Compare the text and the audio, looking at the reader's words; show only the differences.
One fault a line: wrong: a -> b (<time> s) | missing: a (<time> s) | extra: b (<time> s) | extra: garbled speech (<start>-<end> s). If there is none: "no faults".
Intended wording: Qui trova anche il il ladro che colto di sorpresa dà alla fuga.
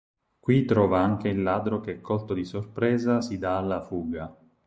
missing: il (1.4 s)
extra: si (3.2 s)